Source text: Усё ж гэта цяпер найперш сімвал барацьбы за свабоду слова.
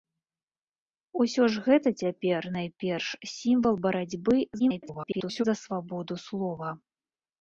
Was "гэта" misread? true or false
false